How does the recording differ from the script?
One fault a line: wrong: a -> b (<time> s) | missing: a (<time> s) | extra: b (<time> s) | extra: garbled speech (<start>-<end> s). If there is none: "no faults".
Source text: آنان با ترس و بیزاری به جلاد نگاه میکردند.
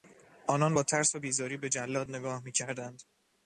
no faults